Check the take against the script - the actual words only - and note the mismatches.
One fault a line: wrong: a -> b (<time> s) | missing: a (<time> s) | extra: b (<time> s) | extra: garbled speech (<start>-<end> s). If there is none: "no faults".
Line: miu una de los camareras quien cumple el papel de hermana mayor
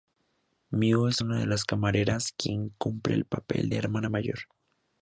extra: es (1.1 s)
wrong: los -> las (1.5 s)